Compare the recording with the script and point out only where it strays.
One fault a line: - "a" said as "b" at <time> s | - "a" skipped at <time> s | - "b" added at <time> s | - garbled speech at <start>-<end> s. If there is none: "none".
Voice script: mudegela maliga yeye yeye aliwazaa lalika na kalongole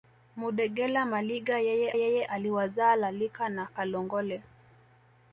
none